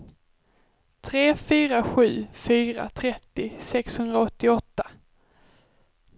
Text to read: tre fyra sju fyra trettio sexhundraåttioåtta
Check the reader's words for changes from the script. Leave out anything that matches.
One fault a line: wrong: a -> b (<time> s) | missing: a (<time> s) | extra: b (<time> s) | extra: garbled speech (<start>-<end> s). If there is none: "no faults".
no faults